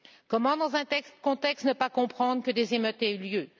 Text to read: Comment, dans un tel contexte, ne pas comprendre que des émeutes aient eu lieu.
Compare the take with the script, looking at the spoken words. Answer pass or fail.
pass